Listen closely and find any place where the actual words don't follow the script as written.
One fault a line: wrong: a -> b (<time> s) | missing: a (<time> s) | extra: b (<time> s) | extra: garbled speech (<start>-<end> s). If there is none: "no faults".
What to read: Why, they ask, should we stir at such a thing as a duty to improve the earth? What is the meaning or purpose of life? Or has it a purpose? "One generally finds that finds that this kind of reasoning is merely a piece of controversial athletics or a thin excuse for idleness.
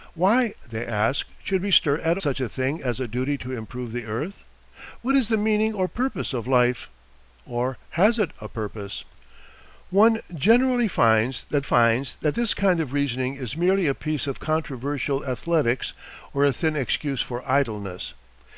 no faults